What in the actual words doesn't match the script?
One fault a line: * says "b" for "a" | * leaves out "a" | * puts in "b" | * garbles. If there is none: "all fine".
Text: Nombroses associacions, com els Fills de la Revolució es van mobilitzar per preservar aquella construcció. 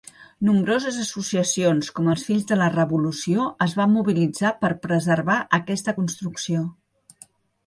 * says "aquesta" for "aquella"